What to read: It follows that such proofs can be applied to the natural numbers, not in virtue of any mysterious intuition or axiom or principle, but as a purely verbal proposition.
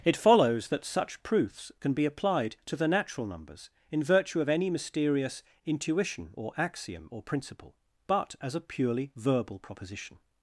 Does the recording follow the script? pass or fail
fail